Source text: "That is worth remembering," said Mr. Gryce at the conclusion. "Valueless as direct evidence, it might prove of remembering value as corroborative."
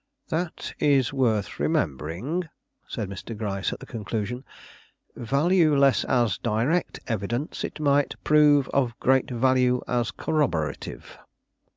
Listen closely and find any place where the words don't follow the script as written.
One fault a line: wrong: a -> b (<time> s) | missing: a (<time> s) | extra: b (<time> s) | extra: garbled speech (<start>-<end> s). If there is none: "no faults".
wrong: remembering -> great (9.0 s)